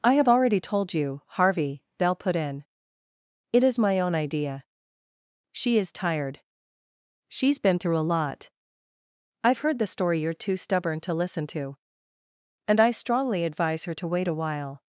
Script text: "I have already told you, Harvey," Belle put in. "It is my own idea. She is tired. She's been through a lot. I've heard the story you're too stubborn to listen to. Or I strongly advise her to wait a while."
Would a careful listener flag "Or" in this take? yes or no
yes